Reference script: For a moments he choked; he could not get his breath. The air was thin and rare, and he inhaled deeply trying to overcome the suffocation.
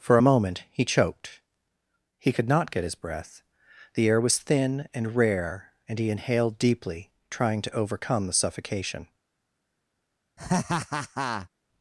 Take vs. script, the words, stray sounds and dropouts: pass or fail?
fail